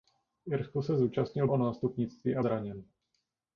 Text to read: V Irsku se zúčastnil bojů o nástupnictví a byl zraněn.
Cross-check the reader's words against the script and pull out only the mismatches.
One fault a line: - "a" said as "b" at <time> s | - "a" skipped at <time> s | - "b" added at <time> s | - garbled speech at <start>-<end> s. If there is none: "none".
- "bojů" skipped at 1.5 s
- "byl" skipped at 2.4 s